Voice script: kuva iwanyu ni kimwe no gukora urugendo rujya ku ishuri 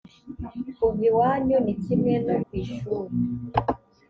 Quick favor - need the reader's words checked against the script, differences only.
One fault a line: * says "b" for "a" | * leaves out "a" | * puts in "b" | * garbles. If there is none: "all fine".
* leaves out "gukora urugendo rujya"